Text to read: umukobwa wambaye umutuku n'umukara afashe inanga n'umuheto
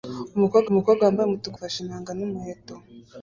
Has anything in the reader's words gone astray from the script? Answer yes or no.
yes